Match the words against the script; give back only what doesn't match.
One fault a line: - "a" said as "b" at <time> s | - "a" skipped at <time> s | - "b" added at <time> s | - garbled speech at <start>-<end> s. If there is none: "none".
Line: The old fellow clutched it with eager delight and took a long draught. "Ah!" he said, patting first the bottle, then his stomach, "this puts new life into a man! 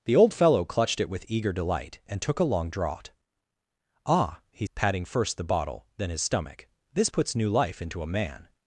- "said" skipped at 4.7 s